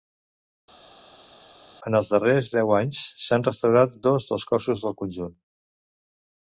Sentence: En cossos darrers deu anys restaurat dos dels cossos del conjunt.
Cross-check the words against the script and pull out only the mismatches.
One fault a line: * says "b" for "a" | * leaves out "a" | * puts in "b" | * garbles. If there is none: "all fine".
* says "els" for "cossos"
* puts in "s'han"